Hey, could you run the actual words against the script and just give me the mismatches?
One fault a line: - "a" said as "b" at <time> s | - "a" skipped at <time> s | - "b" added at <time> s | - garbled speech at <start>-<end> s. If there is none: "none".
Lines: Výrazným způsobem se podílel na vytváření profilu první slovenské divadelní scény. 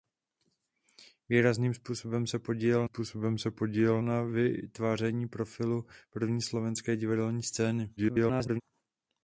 - "způsobem se podílel" added at 2.8 s
- garbled speech at 8.0-8.6 s